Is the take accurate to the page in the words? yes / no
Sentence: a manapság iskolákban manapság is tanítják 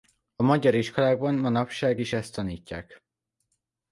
no